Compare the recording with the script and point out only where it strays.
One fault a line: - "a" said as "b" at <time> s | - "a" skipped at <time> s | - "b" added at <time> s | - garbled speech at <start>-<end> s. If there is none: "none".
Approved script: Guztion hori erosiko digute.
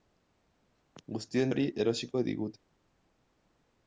none